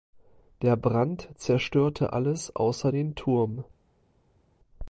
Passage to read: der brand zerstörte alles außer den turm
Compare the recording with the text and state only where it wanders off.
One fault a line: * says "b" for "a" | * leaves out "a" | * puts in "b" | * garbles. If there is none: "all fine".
all fine